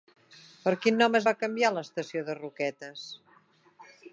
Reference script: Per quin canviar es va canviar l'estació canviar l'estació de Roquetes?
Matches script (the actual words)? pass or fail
fail